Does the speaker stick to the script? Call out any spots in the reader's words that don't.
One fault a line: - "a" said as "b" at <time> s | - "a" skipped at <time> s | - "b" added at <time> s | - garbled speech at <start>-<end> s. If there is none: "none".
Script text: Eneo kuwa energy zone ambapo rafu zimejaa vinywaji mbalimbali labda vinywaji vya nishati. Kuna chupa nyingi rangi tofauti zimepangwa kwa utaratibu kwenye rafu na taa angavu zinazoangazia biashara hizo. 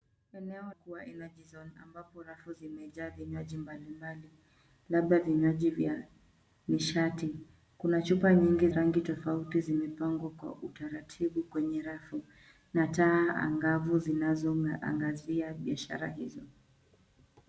none